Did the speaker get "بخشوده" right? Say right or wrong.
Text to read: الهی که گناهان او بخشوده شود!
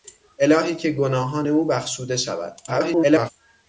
right